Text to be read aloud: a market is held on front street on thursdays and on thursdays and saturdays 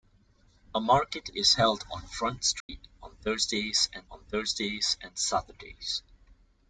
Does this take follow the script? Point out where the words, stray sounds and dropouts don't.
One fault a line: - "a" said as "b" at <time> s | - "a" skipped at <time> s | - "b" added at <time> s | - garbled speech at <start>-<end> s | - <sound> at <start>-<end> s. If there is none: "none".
- dropout at 2.6-2.7 s